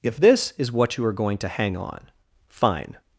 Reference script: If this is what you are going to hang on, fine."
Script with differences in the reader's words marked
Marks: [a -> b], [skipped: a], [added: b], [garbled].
If this is what you are going to hang on, fine."